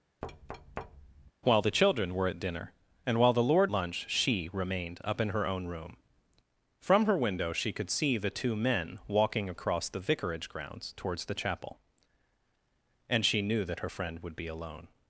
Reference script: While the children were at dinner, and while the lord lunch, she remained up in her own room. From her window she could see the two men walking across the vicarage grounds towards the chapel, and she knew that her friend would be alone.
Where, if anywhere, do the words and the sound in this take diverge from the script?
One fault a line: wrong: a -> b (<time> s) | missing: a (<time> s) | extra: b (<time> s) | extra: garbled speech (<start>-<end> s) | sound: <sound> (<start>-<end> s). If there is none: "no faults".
sound: thud (0.2-1.3 s)